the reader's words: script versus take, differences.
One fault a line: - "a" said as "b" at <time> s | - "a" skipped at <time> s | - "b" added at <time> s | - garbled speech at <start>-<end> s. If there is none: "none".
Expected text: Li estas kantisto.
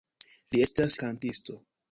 none